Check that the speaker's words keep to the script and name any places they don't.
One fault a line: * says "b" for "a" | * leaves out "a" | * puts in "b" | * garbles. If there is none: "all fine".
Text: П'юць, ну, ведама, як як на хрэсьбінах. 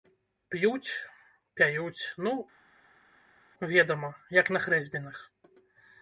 * puts in "пяюць"
* leaves out "як"